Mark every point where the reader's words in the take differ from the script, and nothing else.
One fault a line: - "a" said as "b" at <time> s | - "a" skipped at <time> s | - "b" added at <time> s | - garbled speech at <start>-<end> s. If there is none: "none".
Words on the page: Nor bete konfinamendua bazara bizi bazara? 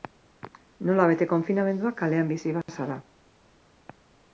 - "Nor" said as "Nola" at 0.9 s
- "bazara" said as "kalean" at 2.0 s